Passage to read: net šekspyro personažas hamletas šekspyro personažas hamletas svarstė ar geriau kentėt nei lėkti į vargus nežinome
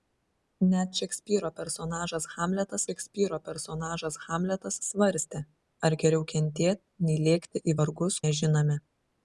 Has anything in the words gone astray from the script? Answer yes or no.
no